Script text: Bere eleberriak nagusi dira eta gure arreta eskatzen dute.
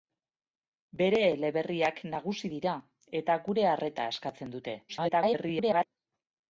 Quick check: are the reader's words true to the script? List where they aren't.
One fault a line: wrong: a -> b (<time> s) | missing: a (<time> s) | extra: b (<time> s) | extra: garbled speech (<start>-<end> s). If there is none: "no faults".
extra: garbled speech (4.9-5.9 s)